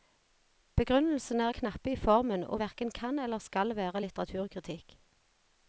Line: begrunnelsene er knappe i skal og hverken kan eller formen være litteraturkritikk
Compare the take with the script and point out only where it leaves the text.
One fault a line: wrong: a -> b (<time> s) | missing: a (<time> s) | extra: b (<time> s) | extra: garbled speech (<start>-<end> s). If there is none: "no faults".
wrong: skal -> formen (2.0 s)
wrong: formen -> skal (3.4 s)